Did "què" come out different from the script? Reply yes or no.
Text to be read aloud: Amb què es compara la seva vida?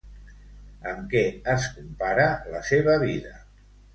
no